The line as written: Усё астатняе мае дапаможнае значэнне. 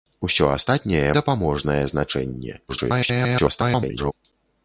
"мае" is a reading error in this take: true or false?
true